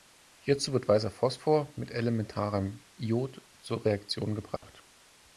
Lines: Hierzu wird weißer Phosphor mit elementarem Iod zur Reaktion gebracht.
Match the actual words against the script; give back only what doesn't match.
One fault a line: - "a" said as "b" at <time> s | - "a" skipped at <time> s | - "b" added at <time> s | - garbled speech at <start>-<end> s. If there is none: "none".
none